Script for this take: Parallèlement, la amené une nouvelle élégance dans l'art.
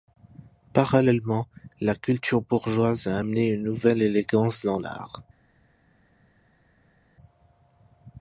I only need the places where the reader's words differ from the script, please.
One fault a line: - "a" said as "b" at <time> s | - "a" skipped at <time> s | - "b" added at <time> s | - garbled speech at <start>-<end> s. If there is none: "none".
- "culture bourgeoise a" added at 1.9 s